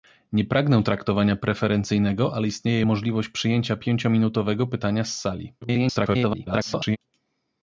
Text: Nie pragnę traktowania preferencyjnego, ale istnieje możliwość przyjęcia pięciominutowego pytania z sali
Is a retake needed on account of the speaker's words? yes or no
yes